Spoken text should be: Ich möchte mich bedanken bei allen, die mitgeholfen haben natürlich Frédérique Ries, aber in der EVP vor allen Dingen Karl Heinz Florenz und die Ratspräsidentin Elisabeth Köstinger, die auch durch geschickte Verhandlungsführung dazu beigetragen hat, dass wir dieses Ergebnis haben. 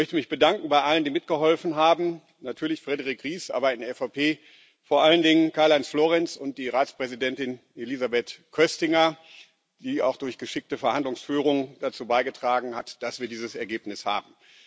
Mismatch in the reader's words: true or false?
false